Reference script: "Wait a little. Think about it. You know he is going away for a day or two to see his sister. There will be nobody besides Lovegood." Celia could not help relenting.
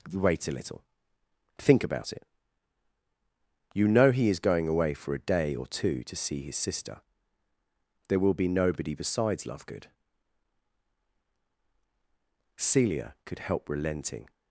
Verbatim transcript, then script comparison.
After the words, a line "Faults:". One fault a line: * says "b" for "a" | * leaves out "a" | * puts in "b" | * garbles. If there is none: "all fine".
"Wait a little. Think about it. You know he is going away for a day or two to see his sister. There will be nobody besides Lovegood." Celia could help relenting.
Faults:
* leaves out "not"